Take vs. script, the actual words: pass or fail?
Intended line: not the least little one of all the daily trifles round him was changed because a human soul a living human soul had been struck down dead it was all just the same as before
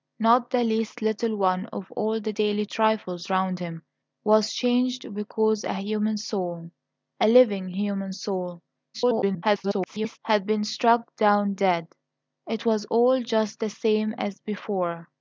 fail